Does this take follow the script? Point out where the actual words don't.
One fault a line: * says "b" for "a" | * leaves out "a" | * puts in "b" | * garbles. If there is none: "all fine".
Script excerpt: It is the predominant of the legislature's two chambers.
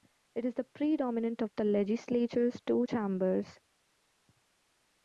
all fine